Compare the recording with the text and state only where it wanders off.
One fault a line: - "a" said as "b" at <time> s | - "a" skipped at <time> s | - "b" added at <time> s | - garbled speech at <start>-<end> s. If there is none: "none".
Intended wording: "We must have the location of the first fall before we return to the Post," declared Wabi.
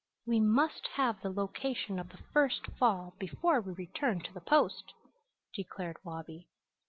none